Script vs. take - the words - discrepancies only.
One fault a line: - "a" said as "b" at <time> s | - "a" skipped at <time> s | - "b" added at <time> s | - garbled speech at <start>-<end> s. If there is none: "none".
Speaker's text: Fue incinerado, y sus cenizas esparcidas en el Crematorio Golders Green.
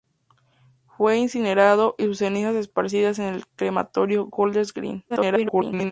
- garbled speech at 5.1-5.9 s